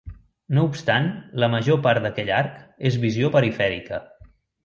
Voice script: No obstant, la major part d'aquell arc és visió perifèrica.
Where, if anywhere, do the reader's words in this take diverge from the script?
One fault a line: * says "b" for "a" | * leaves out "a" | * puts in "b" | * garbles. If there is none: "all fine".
all fine